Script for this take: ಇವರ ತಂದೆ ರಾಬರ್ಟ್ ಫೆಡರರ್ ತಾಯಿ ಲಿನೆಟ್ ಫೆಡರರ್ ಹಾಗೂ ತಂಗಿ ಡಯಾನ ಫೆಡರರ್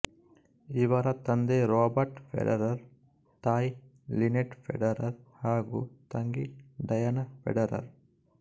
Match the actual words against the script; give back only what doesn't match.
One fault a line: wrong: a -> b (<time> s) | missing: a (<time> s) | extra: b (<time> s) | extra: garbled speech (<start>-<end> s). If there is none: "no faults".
no faults